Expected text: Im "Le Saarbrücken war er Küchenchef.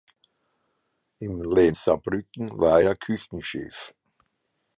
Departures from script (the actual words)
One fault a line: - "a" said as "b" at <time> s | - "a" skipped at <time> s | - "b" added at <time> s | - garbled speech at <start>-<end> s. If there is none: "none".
none